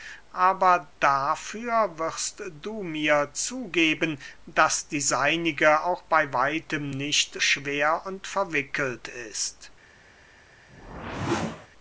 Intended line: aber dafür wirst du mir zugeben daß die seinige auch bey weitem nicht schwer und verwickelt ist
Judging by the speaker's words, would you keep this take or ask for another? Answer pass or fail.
pass